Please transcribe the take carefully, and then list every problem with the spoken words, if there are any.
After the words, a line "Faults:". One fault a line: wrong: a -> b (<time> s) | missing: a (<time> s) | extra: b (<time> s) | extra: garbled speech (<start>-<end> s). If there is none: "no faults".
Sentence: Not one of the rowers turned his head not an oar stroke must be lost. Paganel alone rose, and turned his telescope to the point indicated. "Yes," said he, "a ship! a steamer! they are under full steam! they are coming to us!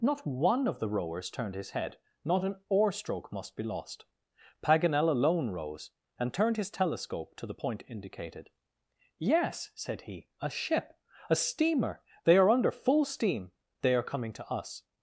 Not one of the rowers turned his head not an oar stroke must be lost. Paganel alone rose, and turned his telescope to the point indicated. "Yes," said he, "a ship! a steamer! they are under full steam! they are coming to us!
Faults:
no faults